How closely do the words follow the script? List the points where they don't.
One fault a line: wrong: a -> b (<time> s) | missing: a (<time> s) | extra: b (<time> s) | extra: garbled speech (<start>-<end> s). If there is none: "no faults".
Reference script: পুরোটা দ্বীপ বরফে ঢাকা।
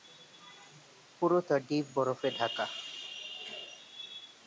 no faults